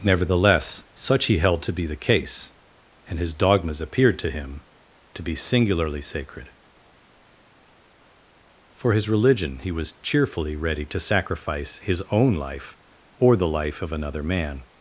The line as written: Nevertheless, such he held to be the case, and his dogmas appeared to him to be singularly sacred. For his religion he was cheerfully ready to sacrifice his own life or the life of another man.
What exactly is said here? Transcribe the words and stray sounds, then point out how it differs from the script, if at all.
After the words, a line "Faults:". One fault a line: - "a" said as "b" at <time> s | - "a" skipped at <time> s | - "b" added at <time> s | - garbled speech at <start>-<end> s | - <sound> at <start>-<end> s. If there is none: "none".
Nevertheless, such he held to be the case, and his dogmas appeared to him to be singularly sacred. For his religion he was cheerfully ready to sacrifice his own life or the life of another man.
Faults:
none